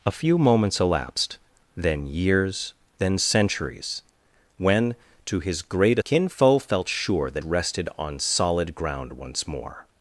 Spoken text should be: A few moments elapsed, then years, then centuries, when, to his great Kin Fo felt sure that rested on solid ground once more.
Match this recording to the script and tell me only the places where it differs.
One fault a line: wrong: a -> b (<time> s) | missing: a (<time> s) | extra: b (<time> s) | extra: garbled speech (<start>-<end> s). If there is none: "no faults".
no faults